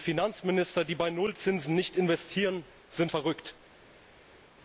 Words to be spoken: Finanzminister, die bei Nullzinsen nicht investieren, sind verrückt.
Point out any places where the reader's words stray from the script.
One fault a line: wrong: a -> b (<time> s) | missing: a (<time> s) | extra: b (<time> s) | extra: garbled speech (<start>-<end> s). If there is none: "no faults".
no faults